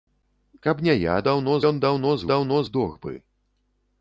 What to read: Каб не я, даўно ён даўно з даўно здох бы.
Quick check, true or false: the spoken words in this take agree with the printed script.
true